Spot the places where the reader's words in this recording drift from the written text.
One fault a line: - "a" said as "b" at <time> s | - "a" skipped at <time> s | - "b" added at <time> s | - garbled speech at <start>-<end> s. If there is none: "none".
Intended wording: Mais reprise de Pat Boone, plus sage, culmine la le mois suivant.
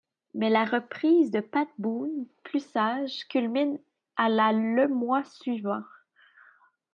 - "la" added at 0.5 s
- "à" added at 4.2 s